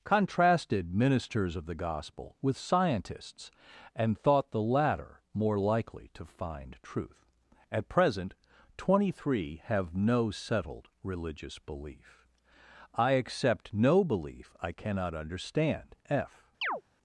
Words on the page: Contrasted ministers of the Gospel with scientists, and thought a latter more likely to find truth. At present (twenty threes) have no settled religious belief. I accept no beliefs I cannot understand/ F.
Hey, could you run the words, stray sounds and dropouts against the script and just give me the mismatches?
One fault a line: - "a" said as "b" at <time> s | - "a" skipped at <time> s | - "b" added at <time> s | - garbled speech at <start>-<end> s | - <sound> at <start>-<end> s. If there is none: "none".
- "a" said as "the" at 4.5 s
- "threes" said as "three" at 9.2 s
- "beliefs" said as "belief" at 14.0 s
- chirp at 16.6-16.8 s